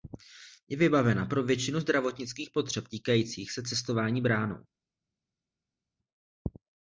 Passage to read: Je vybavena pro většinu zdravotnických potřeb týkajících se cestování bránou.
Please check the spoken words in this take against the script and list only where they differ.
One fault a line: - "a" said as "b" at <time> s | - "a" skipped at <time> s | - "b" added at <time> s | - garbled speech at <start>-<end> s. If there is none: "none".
none